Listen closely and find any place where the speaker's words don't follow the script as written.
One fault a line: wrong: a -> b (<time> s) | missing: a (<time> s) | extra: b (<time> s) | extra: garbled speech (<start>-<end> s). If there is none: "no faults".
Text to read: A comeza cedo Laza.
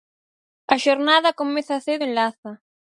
extra: xornada (0.8 s)
extra: en (2.0 s)